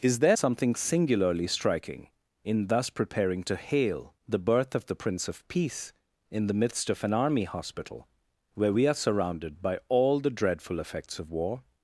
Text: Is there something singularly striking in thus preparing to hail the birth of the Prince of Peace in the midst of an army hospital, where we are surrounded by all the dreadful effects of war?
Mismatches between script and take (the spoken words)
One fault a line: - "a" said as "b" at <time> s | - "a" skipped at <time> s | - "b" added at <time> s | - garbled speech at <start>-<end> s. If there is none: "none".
none